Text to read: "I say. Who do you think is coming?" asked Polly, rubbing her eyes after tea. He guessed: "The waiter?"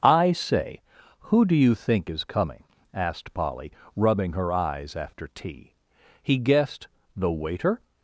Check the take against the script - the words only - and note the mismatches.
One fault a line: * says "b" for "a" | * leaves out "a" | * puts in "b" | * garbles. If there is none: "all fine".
all fine